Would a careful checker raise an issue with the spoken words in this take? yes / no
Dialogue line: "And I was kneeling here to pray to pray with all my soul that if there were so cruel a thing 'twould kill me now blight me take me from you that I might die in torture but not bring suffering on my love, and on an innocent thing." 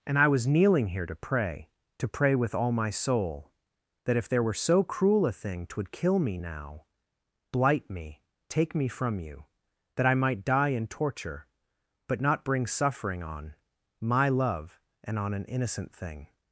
no